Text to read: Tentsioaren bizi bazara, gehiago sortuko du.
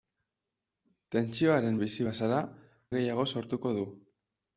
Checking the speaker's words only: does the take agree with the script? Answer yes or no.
yes